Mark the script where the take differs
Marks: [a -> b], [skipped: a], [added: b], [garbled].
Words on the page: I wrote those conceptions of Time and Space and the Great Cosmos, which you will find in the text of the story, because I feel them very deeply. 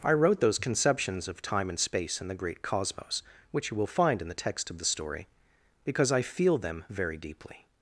I wrote those conceptions of Time and Space and the Great Cosmos, which you will find in the text of the story, because I feel them very deeply.